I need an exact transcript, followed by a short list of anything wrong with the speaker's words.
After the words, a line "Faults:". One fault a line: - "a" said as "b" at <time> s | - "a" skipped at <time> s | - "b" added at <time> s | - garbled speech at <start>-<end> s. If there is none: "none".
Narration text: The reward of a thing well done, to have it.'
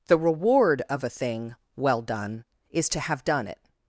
The reward of a thing well done, is to have done it.'
Faults:
- "is" added at 2.7 s
- "done" added at 3.2 s